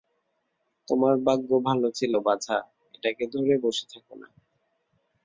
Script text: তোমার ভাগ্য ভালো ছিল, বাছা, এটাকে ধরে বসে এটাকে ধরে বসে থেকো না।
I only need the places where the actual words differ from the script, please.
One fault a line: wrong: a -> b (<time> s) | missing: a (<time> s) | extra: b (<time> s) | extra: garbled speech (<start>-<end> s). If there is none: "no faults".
missing: এটাকে ধরে বসে (3.9 s)